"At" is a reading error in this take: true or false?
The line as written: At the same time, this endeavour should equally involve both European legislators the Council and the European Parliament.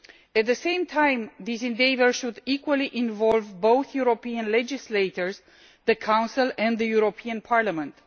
false